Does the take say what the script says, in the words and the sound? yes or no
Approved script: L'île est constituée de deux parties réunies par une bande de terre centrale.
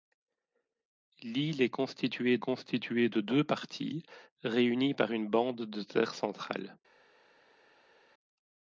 no